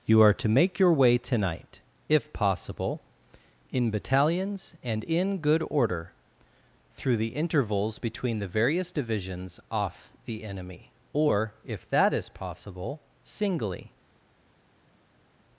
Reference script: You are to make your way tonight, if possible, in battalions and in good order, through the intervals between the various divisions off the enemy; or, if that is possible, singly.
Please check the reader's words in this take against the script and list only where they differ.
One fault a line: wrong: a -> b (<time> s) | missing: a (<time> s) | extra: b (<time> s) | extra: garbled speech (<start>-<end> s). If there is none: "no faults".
no faults